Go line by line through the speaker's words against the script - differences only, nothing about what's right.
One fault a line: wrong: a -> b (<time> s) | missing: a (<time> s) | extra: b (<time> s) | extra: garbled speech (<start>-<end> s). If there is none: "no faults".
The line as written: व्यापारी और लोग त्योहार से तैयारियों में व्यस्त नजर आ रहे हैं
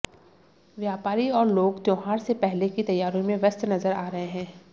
extra: पहले की (2.4 s)